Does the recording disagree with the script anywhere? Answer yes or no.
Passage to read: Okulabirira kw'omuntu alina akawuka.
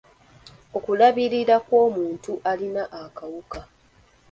no